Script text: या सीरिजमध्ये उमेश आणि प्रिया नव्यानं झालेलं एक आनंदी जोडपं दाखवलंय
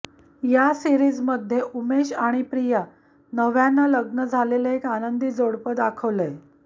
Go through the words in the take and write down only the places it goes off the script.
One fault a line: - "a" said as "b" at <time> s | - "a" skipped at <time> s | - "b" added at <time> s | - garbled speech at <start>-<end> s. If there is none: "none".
- "लग्न" added at 3.9 s